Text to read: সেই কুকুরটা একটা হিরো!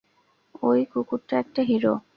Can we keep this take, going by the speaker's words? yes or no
no